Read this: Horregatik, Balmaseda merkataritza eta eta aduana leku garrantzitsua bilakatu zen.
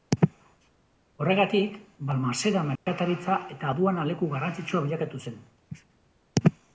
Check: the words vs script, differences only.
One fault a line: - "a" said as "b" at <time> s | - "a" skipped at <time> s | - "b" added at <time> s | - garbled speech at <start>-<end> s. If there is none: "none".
- "eta" skipped at 3.7 s